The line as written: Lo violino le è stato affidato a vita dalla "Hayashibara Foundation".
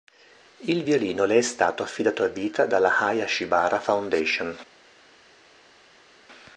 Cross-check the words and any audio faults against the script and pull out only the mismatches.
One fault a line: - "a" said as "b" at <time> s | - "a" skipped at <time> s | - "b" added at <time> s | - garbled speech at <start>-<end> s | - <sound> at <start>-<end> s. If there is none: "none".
- "Lo" said as "Il" at 0.6 s